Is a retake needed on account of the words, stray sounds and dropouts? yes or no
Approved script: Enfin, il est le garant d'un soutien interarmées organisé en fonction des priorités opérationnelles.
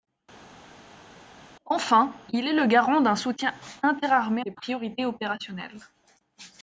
yes